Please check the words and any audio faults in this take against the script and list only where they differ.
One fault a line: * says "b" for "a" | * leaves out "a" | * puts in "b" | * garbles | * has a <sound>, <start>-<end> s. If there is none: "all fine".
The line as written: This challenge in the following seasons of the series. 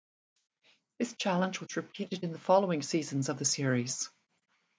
* puts in "was repeated"